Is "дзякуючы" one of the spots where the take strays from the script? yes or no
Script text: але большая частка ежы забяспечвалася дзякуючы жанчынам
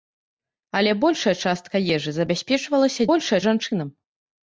yes